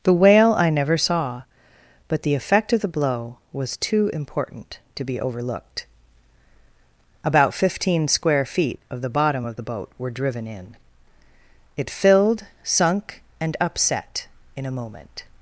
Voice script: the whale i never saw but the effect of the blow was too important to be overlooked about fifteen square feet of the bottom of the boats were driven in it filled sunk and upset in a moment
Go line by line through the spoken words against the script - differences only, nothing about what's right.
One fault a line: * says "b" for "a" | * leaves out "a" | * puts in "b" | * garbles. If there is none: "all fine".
* says "boat" for "boats"